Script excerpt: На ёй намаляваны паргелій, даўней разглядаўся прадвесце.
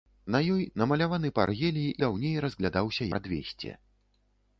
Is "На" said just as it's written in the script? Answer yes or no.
yes